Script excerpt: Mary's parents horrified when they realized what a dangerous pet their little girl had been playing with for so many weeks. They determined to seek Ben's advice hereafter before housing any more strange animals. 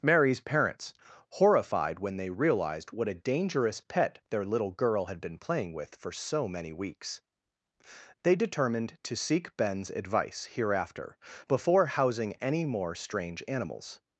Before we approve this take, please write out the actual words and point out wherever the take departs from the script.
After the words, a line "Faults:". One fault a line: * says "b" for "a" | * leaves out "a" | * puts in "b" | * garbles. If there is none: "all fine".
Mary's parents horrified when they realized what a dangerous pet their little girl had been playing with for so many weeks. They determined to seek Ben's advice hereafter before housing any more strange animals.
Faults:
all fine